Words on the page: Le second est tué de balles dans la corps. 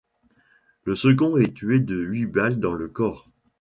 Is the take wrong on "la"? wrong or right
wrong